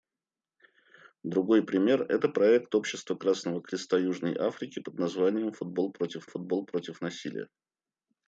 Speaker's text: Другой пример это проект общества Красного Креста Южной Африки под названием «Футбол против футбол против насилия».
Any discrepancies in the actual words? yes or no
no